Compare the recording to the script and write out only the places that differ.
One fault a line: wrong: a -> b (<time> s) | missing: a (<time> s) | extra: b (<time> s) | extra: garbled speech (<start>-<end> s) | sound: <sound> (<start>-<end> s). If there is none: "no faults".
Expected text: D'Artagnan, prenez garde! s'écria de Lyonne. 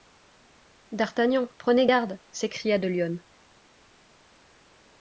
no faults